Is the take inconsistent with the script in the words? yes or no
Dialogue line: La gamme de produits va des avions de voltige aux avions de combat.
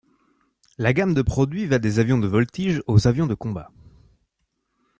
no